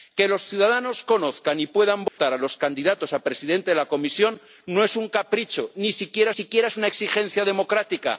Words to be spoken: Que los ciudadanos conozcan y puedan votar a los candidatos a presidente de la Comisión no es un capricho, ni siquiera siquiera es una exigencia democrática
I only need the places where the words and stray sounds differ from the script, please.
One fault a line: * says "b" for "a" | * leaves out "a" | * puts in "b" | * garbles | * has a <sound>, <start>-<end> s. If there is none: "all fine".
* has a dropout, 2.1-2.2 s